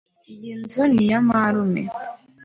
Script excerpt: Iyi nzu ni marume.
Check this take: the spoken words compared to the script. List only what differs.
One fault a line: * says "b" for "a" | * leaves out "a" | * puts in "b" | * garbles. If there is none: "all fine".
* puts in "iya"